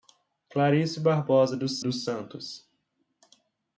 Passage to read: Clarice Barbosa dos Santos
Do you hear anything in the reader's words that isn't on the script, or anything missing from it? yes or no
yes